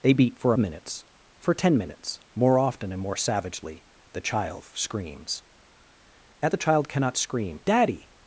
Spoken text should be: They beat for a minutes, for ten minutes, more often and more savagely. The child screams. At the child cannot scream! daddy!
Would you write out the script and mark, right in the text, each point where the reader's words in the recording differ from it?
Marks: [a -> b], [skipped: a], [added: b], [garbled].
They beat for a minutes, for ten minutes, more often and more savagely. The child screams. At the child cannot scream! daddy!